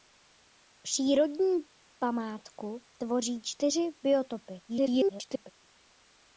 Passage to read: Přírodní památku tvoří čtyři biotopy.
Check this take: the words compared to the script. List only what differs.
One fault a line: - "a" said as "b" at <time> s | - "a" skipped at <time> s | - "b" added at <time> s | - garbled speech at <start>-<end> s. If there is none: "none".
- garbled speech at 4.7-5.5 s